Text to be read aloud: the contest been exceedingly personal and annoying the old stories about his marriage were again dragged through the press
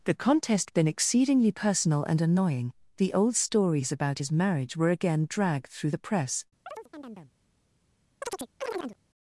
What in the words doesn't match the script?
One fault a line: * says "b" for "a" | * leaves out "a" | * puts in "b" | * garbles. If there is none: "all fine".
all fine